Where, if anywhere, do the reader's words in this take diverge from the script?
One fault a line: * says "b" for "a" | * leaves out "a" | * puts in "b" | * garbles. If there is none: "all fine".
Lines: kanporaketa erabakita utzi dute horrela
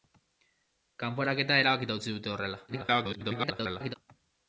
* garbles